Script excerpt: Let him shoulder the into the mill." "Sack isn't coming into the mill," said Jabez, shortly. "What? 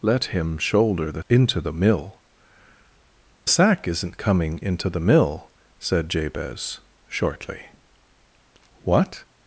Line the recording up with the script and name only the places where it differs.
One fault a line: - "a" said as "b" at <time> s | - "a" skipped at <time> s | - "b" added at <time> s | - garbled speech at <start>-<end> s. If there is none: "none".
none